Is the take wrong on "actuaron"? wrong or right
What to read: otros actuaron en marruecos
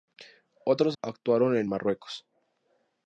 right